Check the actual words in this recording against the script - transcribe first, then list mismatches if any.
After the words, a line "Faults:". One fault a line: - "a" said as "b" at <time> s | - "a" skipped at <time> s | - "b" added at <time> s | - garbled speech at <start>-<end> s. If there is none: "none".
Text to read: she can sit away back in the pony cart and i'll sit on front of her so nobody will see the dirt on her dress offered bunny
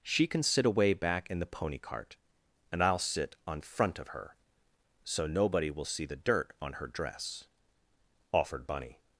she can sit away back in the pony cart and i'll sit on front of her so nobody will see the dirt on her dress offered bunny
Faults:
none